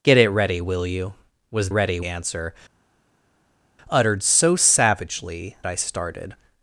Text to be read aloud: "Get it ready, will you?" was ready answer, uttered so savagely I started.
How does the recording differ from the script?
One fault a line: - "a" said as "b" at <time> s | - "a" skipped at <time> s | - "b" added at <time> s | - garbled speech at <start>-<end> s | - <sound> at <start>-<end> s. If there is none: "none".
none